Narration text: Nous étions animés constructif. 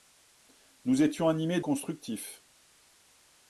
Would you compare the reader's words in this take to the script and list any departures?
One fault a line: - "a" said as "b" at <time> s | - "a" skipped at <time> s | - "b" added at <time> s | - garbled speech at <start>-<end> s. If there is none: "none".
none